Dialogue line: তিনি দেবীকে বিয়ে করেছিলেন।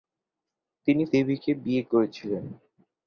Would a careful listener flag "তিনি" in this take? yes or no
no